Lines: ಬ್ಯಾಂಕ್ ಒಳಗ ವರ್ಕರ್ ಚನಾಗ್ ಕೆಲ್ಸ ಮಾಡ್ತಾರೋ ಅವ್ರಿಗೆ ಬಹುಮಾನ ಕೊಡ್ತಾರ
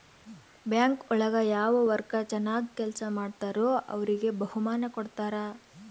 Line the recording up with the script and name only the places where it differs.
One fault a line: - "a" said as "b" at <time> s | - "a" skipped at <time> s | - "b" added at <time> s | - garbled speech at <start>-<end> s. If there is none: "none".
- "ಯಾವ" added at 1.5 s